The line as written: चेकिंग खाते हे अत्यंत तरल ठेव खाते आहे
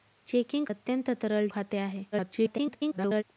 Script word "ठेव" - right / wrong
wrong